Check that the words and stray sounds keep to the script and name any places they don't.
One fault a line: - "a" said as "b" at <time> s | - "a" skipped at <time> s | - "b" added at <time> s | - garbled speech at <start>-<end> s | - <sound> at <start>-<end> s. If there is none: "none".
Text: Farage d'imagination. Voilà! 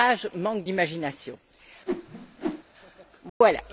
- "manque" added at 0.3 s
- whoosh at 1.9-2.6 s
- dropout at 3.3-3.4 s